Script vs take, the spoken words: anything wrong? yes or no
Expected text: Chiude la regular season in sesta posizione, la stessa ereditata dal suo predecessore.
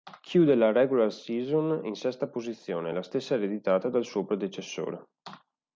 no